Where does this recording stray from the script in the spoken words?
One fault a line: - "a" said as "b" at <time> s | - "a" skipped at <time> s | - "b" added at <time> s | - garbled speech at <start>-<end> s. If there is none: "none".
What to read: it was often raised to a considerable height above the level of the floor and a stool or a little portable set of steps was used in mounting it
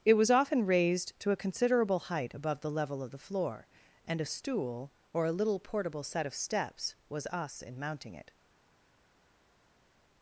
- "used" said as "us" at 7.3 s